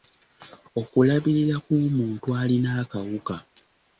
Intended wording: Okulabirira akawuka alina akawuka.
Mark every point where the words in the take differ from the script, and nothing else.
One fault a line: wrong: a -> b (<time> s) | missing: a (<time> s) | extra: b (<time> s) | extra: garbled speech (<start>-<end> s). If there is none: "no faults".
wrong: akawuka -> kw'omuntu (1.6 s)